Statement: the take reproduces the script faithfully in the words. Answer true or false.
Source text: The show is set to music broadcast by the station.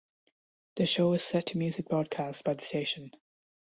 true